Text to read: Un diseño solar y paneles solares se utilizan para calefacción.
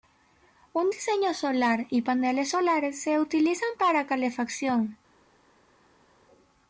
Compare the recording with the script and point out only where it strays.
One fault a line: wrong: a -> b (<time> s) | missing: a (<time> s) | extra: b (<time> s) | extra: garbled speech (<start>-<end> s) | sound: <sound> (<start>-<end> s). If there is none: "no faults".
no faults